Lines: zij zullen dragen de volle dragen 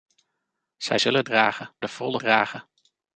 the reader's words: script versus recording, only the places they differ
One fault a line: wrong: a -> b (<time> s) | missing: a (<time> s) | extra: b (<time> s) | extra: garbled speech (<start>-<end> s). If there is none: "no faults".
no faults